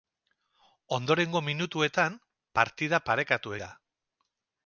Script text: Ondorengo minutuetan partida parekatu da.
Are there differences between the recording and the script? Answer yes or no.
no